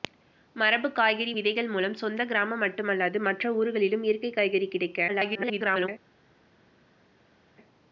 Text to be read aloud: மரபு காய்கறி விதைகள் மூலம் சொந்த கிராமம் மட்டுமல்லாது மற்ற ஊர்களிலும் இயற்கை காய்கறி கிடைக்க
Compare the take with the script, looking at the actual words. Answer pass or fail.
fail